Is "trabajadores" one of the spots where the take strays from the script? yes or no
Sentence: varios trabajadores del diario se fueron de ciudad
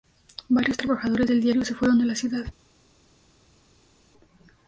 no